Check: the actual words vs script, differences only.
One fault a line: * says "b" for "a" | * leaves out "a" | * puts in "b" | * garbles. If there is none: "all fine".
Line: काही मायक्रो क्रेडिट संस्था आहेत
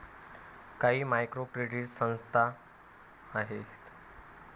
all fine